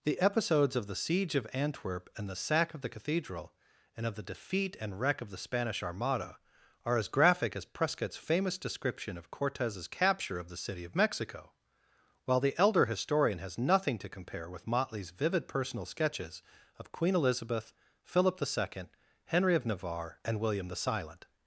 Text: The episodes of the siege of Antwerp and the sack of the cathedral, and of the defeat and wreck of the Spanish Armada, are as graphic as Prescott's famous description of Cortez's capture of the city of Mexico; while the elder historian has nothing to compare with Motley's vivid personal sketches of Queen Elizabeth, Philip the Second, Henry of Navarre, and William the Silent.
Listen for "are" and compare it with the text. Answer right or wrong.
right